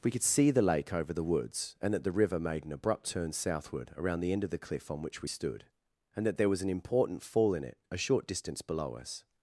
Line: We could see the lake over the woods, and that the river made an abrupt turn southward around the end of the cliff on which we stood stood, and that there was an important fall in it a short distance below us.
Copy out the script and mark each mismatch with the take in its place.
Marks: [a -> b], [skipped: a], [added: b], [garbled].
We could see the lake over the woods, and that the river made an abrupt turn southward around the end of the cliff on which we stood [skipped: stood,] and that there was an important fall in it a short distance below us.